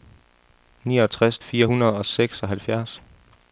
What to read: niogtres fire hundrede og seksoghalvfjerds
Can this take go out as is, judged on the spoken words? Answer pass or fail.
pass